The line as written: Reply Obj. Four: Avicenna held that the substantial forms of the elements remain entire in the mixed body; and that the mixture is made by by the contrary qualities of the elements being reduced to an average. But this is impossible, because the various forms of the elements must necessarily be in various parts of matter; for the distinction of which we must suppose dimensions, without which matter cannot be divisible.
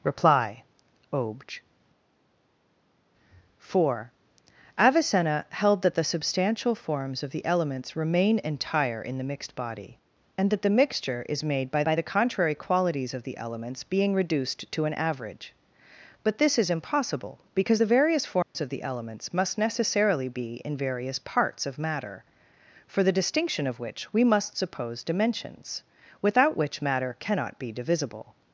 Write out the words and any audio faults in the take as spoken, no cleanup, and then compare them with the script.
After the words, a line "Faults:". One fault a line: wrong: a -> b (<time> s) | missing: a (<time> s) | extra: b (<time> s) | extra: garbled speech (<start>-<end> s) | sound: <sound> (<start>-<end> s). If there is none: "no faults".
Reply Obj. Four: Avicenna held that the substantial forms of the elements remain entire in the mixed body; and that the mixture is made by by the contrary qualities of the elements being reduced to an average. But this is impossible, because the various forms of the elements must necessarily be in various parts of matter; for the distinction of which we must suppose dimensions, without which matter cannot be divisible.
Faults:
sound: dropout (18.4-18.5 s)